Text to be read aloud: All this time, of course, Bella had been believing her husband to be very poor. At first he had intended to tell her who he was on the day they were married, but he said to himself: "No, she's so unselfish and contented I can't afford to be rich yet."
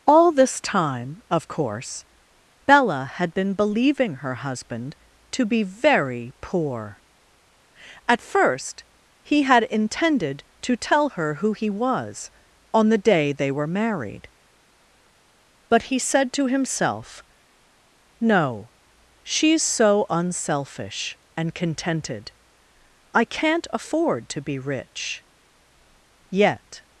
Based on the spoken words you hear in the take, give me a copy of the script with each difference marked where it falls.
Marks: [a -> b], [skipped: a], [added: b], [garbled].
All this time, of course, Bella had been believing her husband to be very poor. At first he had intended to tell her who he was on the day they were married, but he said to himself: "No, she's so unselfish and contented I can't afford to be rich yet."